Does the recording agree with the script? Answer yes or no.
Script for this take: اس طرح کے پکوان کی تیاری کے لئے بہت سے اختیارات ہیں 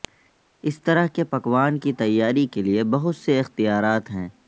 yes